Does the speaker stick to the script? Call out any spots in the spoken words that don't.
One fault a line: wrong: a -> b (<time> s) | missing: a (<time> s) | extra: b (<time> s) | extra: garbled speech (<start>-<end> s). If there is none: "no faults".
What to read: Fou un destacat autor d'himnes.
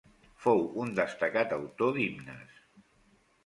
no faults